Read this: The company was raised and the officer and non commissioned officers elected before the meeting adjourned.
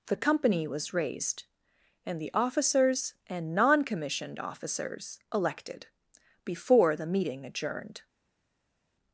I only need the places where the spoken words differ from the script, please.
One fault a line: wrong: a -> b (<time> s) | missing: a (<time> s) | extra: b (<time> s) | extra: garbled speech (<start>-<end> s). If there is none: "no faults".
wrong: officer -> officers (2.3 s)